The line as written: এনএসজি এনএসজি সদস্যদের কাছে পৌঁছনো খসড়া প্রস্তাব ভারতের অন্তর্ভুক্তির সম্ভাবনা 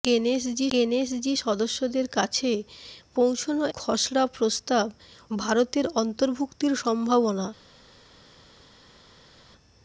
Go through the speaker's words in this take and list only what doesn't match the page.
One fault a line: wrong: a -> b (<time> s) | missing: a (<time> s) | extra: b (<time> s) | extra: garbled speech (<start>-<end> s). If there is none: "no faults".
no faults